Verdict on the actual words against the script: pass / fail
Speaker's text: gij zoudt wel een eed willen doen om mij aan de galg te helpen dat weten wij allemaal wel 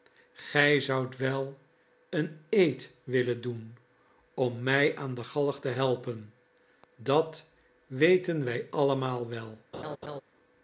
pass